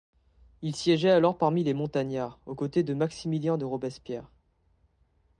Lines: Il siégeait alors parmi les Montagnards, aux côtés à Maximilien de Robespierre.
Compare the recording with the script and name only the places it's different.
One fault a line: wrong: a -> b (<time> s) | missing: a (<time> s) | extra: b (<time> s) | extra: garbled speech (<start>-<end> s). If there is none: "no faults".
wrong: à -> de (2.8 s)